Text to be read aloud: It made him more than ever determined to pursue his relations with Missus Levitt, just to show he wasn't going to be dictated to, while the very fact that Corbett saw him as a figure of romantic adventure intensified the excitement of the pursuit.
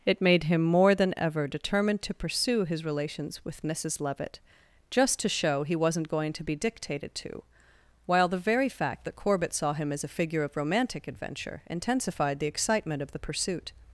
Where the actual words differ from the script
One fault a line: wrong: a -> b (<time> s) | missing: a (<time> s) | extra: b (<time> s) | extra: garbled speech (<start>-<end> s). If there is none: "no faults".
no faults